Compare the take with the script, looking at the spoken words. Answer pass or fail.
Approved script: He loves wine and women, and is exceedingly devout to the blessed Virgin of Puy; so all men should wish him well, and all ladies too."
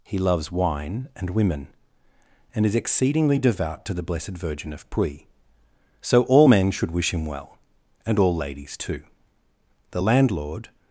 fail